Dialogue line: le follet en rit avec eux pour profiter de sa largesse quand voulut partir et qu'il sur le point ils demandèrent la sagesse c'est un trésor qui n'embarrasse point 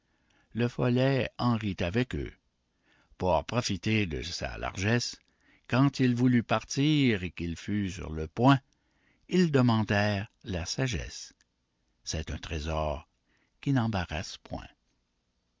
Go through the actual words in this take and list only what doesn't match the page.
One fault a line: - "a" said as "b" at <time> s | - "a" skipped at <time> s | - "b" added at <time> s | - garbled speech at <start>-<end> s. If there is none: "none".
- "il" added at 6.0 s
- "fut" added at 7.5 s